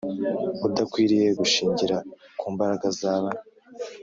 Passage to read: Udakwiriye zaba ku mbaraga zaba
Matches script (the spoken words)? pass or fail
fail